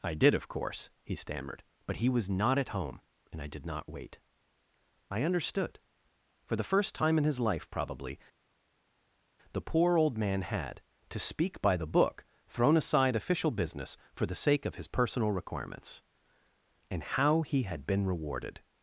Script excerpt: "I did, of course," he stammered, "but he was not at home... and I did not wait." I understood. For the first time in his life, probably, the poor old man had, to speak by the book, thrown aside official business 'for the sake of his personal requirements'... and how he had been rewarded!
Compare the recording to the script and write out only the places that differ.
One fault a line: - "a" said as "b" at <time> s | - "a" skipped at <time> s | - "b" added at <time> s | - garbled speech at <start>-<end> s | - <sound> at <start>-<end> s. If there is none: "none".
none